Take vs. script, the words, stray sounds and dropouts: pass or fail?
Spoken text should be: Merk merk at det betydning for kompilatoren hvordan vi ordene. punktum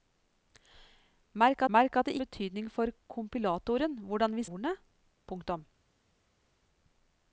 pass